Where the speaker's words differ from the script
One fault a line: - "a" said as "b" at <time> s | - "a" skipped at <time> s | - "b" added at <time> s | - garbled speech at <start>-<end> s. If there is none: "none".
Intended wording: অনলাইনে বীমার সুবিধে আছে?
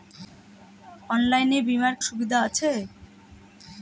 none